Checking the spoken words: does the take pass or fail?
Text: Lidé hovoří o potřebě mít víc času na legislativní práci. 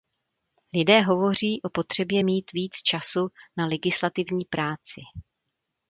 pass